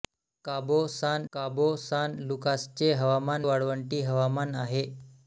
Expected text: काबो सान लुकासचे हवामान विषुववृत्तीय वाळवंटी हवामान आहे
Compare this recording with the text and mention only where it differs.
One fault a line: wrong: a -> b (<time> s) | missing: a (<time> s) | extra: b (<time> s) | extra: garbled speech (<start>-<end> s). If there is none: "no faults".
extra: काबो सान (1.3 s)
missing: विषुववृत्तीय (3.5 s)